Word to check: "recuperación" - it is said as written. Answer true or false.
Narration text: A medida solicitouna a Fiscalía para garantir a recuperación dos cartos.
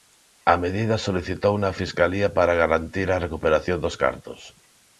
true